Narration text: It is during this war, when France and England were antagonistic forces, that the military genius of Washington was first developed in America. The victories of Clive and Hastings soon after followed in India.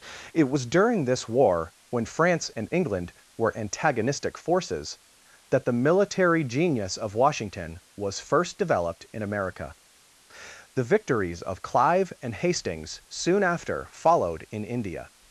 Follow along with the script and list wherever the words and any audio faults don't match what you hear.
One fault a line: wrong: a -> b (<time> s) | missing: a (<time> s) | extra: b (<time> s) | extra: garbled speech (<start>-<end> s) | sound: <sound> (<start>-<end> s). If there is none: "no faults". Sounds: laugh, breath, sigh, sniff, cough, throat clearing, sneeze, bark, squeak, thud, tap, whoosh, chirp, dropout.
wrong: is -> was (0.5 s)